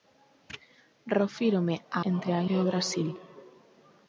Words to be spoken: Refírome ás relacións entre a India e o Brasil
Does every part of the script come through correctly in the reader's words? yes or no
no